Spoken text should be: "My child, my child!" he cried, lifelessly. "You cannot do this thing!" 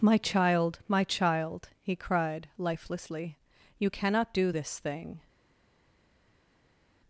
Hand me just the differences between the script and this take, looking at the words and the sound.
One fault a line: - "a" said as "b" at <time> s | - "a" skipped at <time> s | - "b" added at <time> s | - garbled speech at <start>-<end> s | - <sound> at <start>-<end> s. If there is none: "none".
none